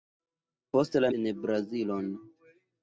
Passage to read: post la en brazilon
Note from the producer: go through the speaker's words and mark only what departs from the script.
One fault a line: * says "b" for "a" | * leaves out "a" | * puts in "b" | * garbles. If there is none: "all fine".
all fine